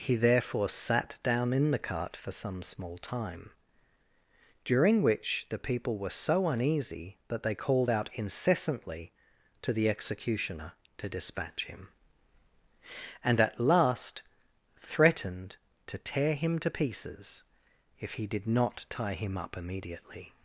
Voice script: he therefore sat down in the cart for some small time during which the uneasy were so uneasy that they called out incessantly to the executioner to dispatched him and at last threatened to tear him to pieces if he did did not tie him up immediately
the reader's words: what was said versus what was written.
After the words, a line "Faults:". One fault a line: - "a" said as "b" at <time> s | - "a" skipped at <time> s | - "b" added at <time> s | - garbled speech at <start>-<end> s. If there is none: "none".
he therefore sat down in the cart for some small time during which the people were so uneasy that they called out incessantly to the executioner to dispatch him and at last threatened to tear him to pieces if he did not tie him up immediately
Faults:
- "uneasy" said as "people" at 5.6 s
- "dispatched" said as "dispatch" at 11.1 s
- "did" skipped at 18.5 s